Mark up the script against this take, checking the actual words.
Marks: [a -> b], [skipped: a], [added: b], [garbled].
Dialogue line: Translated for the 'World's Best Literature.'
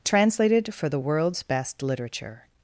Translated for the 'World's Best Literature.'